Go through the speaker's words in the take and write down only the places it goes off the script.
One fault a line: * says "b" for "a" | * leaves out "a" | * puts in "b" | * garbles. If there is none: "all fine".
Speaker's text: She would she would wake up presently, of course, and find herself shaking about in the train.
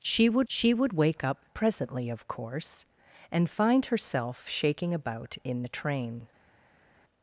all fine